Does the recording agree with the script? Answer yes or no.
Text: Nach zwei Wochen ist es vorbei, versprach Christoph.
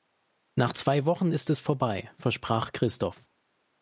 yes